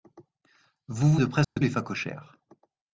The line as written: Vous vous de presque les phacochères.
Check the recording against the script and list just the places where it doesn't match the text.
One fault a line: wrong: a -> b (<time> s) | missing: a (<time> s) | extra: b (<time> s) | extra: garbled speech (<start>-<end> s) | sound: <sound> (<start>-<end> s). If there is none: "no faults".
sound: dropout (1.4-1.6 s)